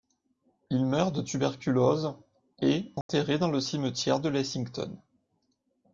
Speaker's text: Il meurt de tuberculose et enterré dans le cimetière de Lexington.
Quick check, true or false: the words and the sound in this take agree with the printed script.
false